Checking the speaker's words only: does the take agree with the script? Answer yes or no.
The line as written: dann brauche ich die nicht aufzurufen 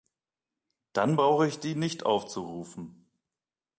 yes